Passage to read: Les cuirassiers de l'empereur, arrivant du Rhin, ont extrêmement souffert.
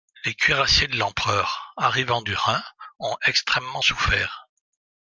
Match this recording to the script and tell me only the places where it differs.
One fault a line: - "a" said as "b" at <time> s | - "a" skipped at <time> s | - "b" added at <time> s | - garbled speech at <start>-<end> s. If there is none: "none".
none